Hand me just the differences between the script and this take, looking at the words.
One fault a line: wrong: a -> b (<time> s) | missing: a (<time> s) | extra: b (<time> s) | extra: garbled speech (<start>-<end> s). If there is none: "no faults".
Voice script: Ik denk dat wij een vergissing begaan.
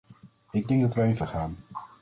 missing: vergissing (1.2 s)